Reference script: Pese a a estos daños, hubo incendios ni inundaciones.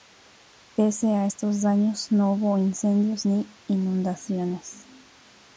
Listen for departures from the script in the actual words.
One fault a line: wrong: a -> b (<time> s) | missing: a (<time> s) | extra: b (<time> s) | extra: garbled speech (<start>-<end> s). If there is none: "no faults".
missing: a (1.3 s)
extra: no (2.1 s)